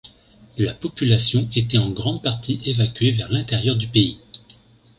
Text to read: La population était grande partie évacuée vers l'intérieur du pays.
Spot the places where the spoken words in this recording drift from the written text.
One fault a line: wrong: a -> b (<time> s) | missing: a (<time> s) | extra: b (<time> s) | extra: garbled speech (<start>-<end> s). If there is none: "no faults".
extra: en (1.8 s)